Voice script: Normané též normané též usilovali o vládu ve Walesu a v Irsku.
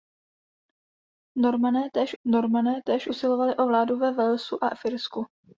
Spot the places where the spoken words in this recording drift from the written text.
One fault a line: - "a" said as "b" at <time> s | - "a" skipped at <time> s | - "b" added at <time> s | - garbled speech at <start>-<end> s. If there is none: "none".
none